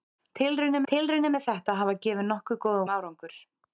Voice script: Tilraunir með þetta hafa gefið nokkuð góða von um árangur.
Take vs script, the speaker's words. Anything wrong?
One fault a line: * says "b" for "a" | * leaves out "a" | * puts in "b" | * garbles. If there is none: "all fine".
* puts in "tilraunir"
* leaves out "von"